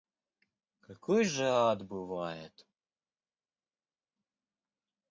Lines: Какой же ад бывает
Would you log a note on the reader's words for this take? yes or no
no